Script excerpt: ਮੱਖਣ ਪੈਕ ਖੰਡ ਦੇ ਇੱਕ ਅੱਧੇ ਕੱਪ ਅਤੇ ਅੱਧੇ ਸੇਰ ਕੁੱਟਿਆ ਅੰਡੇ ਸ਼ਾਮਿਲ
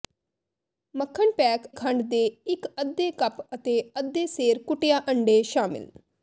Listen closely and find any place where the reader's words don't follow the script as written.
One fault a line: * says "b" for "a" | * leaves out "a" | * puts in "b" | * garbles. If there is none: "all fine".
all fine